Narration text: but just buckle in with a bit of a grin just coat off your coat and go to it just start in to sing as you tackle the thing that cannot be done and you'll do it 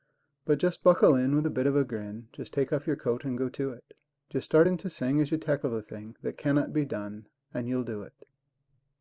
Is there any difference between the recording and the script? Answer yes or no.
yes